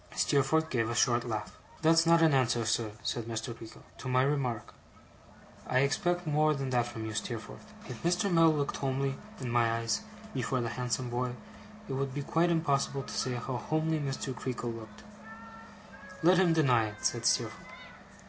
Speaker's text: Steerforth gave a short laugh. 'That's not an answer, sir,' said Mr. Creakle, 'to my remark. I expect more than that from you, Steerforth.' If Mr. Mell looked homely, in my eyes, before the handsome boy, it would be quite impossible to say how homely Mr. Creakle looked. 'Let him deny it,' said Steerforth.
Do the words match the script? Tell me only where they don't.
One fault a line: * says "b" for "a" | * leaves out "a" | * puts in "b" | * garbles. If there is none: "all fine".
all fine